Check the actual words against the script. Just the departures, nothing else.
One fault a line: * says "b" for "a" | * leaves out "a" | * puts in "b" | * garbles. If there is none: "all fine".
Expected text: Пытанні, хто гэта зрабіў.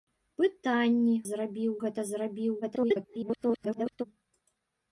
* says "зрабіў" for "хто"
* garbles